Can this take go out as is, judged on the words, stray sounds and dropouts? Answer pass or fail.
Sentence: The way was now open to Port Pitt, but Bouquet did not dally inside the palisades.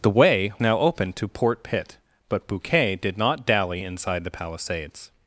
fail